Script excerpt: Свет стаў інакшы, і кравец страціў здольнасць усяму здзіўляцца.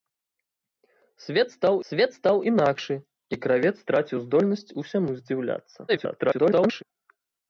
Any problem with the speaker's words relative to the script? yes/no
yes